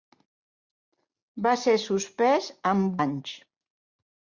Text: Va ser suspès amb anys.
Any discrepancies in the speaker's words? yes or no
no